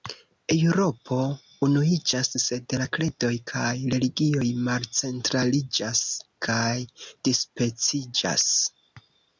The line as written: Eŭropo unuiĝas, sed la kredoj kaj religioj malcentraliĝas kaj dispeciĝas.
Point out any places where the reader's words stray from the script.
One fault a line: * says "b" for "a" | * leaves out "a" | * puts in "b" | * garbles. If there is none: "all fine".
all fine